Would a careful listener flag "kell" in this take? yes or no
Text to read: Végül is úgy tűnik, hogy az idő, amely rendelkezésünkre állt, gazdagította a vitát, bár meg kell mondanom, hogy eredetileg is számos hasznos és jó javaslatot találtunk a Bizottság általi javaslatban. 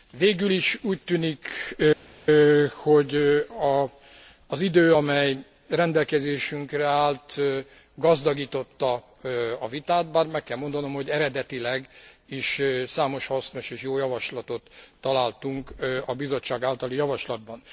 no